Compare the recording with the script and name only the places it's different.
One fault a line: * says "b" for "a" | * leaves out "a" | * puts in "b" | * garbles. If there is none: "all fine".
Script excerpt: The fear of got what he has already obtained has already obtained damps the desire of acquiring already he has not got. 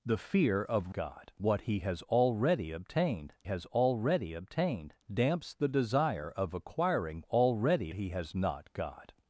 all fine